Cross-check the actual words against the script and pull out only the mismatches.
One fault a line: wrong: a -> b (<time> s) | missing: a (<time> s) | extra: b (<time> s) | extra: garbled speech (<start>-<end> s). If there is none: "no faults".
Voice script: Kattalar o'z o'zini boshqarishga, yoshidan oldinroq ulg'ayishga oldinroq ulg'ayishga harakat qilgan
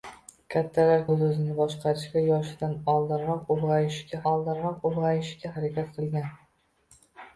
no faults